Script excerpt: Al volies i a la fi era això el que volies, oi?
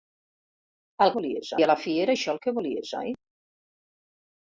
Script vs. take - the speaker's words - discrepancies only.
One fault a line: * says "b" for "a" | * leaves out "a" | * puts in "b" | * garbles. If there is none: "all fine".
all fine